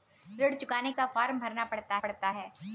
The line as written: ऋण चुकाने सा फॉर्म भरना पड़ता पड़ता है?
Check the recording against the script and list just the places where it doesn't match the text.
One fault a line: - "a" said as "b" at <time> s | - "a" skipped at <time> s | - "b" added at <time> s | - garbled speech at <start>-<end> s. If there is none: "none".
none